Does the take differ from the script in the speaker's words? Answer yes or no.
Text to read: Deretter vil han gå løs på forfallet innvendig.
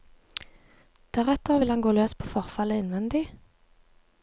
no